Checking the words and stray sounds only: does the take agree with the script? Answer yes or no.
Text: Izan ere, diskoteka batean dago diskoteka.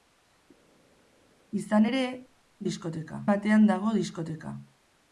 yes